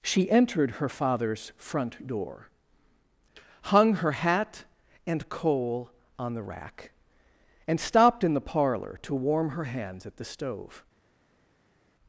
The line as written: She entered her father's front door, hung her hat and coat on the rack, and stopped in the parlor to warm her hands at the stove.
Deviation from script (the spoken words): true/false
true